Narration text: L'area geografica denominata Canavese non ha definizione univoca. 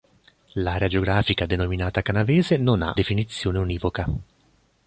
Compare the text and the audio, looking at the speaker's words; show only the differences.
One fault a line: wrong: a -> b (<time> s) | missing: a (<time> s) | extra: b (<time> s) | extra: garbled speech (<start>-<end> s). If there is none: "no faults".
no faults